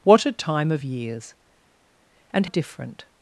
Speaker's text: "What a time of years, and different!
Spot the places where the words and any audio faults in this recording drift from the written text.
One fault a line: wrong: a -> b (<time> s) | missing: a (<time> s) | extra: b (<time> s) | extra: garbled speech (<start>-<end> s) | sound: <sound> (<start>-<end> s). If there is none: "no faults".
no faults